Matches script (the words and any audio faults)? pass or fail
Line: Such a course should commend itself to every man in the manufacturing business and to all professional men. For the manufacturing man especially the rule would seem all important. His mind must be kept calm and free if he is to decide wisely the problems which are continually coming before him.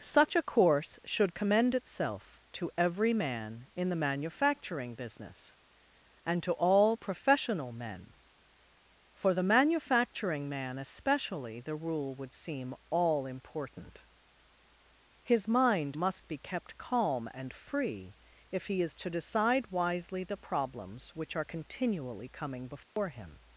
fail